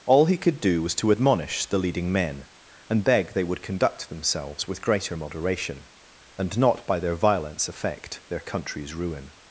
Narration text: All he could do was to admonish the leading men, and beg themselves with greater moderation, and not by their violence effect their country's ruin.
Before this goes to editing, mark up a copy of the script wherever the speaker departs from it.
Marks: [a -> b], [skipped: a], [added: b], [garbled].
All he could do was to admonish the leading men, and beg [added: they would conduct] themselves with greater moderation, and not by their violence effect their country's ruin.